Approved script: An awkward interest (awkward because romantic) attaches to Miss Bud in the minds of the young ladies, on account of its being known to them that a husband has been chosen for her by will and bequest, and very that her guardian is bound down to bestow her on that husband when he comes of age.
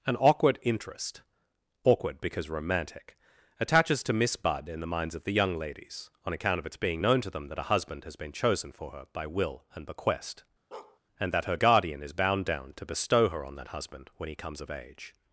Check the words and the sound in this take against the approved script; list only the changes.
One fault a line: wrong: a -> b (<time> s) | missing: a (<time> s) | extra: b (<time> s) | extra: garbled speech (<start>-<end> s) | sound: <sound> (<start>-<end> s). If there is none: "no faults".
sound: bark (10.7-11.0 s)
missing: very (11.3 s)